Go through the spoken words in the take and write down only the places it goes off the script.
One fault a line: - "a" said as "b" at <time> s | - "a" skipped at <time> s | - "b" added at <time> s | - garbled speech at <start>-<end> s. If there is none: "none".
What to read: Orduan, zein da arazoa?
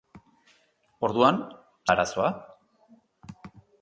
- "zein" skipped at 1.4 s